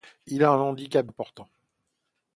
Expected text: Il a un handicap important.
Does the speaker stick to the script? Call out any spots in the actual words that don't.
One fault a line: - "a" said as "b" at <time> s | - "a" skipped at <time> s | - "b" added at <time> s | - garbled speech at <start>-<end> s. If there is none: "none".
none